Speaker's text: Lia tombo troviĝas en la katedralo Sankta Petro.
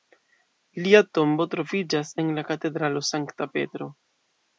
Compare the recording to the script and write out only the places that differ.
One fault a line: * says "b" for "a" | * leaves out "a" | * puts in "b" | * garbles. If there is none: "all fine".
all fine